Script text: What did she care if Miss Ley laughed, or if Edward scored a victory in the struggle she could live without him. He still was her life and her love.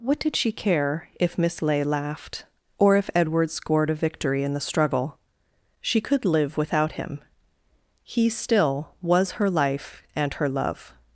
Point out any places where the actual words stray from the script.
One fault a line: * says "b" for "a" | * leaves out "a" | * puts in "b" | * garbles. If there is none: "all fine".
all fine